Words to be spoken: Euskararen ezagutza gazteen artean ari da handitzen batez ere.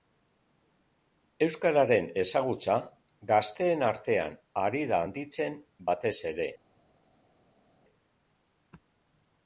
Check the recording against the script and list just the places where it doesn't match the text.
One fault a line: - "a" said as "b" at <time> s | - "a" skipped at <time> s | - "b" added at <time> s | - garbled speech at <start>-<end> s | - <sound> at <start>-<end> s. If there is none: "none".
none